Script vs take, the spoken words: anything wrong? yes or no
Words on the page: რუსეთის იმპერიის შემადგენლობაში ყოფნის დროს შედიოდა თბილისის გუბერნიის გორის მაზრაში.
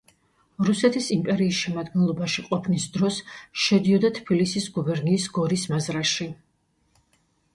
no